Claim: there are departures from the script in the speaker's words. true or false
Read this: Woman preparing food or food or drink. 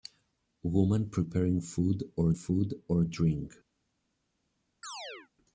false